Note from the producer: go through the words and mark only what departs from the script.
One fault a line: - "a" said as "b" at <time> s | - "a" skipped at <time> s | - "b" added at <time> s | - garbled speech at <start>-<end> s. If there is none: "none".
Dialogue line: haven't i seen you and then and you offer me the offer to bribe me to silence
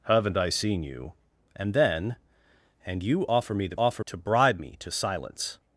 none